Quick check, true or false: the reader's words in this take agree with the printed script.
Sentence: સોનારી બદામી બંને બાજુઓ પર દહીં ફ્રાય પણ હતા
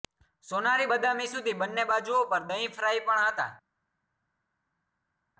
false